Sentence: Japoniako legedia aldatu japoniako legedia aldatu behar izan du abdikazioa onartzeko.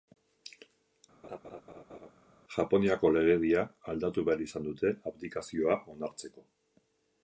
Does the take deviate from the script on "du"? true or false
true